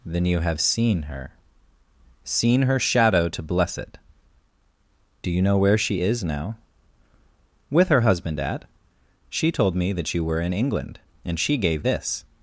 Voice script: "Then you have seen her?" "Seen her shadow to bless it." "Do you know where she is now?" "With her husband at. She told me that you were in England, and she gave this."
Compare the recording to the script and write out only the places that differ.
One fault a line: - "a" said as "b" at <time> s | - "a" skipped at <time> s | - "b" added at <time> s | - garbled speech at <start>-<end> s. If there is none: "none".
none